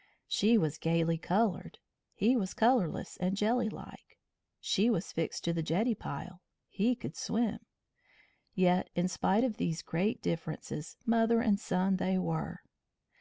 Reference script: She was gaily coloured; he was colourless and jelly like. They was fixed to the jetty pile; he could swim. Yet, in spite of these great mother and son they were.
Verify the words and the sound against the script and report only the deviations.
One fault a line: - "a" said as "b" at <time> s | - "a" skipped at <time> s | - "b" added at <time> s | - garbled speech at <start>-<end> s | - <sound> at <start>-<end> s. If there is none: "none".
- "They" said as "She" at 4.6 s
- "differences" added at 10.2 s